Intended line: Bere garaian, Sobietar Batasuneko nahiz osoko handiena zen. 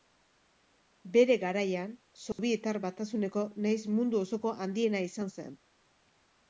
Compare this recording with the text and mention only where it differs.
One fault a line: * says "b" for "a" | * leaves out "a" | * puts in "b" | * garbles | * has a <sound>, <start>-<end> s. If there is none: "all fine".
* has a dropout, 2.3-2.4 s
* puts in "mundu"
* puts in "izan"